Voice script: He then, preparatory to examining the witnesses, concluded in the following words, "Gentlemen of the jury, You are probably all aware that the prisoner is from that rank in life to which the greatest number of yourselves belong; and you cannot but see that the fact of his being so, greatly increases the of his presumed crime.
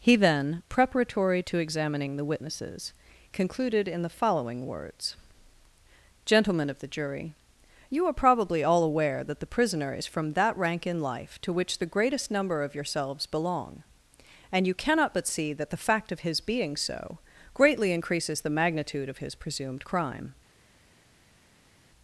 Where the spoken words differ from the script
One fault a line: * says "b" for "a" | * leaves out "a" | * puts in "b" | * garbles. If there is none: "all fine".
* puts in "magnitude"